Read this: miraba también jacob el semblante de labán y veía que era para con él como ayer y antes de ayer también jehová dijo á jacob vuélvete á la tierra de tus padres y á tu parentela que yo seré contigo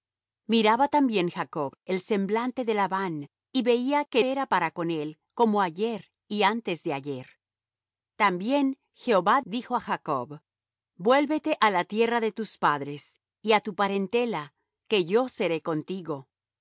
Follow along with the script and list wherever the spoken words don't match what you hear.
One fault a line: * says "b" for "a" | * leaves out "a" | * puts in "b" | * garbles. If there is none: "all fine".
all fine